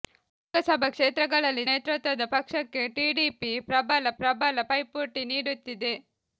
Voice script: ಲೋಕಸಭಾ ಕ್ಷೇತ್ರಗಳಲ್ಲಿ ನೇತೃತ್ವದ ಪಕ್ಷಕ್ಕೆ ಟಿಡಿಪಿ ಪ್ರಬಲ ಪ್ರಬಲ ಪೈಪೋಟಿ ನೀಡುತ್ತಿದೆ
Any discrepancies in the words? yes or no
no